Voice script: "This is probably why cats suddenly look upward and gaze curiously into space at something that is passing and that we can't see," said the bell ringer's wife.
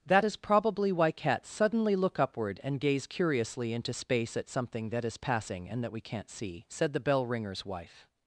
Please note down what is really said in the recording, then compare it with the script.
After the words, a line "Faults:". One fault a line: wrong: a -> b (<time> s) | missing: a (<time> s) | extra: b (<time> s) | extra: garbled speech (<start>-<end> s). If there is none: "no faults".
"That is probably why cats suddenly look upward and gaze curiously into space at something that is passing and that we can't see," said the bell ringer's wife.
Faults:
wrong: This -> That (0.0 s)